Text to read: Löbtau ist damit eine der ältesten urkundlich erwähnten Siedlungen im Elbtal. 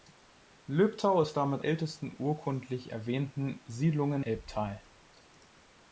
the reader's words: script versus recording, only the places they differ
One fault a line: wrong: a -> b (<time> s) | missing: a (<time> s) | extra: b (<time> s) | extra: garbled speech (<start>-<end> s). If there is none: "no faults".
missing: eine der (1.6 s)
missing: im (4.2 s)